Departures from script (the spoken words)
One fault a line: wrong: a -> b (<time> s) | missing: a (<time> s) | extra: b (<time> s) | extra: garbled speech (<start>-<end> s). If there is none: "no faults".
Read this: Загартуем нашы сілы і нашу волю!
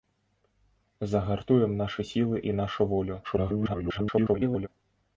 extra: garbled speech (3.2-4.7 s)